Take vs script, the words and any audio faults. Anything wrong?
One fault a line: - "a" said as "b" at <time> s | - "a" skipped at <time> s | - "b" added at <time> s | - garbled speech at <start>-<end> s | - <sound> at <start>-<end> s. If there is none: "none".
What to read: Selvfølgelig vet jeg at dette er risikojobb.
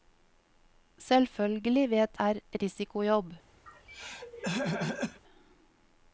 - "jeg at dette" skipped at 2.2 s
- throat clearing at 3.7-5.2 s